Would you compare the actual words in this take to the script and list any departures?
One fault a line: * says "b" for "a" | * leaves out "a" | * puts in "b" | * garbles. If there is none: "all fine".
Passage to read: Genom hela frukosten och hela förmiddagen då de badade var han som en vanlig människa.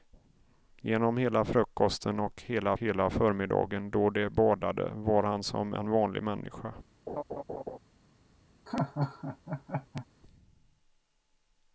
* puts in "hela"